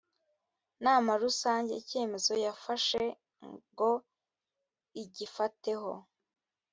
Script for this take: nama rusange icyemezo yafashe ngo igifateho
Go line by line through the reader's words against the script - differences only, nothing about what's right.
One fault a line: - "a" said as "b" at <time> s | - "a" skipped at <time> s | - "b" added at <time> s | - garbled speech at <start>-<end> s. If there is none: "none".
none